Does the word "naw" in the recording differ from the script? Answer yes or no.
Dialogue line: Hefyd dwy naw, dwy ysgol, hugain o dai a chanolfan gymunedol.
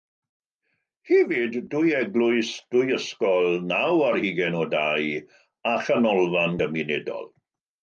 yes